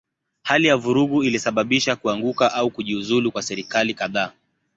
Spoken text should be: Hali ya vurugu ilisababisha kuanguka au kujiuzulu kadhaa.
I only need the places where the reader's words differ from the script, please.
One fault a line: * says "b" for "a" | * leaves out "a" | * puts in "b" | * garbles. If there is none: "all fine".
* puts in "kwa serikali"